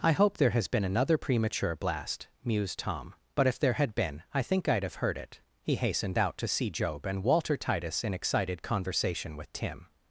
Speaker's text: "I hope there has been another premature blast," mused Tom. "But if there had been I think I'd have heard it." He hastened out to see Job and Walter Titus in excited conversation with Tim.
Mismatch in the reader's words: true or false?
false